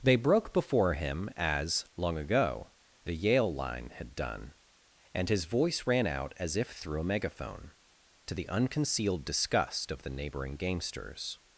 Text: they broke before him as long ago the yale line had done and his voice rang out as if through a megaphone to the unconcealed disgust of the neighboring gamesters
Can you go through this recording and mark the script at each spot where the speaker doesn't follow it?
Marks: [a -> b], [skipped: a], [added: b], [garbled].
they broke before him as long ago the yale line had done and his voice [rang -> ran] out as if through a megaphone to the unconcealed disgust of the neighboring gamesters